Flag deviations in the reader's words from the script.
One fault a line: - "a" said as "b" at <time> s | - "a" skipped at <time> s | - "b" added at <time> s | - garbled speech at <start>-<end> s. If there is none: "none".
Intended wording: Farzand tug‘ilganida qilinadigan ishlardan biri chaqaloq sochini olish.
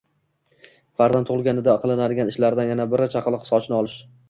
- "yana" added at 2.7 s